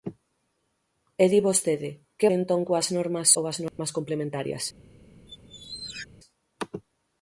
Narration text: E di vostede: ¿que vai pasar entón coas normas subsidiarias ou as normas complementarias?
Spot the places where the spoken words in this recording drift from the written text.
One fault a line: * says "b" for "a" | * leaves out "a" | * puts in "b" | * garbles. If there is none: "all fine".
* leaves out "vai pasar"
* leaves out "subsidiarias"